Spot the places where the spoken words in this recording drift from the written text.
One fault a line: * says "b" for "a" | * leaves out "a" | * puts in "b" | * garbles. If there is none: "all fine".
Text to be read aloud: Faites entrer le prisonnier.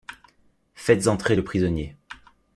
all fine